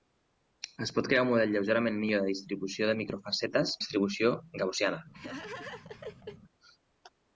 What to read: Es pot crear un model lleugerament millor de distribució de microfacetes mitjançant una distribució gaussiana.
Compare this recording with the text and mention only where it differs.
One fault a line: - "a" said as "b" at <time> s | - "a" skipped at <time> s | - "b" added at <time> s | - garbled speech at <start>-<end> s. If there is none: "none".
- "mitjançant una" skipped at 3.8 s